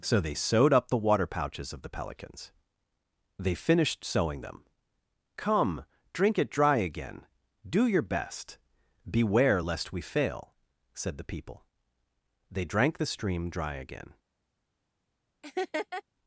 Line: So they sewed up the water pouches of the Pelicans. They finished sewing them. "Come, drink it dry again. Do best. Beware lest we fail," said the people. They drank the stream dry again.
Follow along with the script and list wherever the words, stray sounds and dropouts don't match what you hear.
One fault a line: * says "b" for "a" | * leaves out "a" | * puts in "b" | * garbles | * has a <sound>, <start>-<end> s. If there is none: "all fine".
* puts in "your"
* has a laugh, 15.4-16.0 s